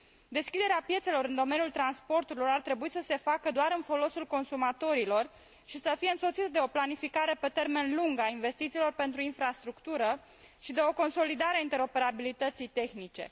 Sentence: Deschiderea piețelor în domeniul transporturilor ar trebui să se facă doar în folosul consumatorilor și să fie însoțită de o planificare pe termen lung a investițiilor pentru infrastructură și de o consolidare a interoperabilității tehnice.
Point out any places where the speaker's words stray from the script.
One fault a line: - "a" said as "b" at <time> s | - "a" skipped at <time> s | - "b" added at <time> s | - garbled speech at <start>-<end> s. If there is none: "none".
none